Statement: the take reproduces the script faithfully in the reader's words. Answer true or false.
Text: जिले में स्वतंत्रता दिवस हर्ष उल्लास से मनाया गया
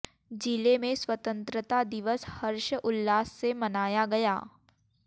true